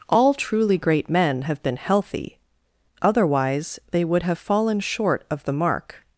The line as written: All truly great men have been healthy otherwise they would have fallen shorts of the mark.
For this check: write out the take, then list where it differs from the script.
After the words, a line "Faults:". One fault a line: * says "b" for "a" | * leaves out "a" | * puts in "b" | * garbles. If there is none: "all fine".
All truly great men have been healthy otherwise they would have fallen short of the mark.
Faults:
* says "short" for "shorts"